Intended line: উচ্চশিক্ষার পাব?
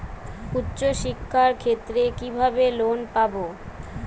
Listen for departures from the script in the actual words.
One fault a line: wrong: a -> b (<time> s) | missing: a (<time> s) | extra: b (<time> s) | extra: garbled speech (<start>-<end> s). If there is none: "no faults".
extra: ক্ষেত্রে কিভাবে লোন (1.6 s)